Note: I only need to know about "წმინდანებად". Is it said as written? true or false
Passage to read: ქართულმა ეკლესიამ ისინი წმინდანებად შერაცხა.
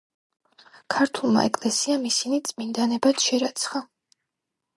true